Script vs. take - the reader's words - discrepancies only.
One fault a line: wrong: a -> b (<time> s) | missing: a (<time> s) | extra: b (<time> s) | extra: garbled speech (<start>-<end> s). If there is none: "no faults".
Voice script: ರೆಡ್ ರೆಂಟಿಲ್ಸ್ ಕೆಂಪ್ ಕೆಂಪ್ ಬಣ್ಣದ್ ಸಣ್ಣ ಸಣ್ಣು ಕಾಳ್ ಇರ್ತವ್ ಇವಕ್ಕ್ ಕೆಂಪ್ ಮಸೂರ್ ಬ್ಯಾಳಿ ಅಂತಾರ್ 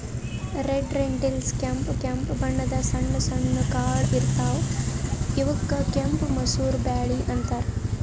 no faults